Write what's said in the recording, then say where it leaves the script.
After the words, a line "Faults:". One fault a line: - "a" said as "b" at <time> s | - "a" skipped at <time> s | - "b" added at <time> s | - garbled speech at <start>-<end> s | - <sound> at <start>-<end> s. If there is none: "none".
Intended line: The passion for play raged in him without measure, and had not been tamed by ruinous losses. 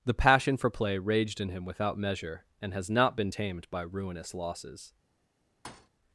The passion for play raged in him without measure, and has not been tamed by ruinous losses.
Faults:
- "had" said as "has" at 2.7 s
- thud at 5.6-5.9 s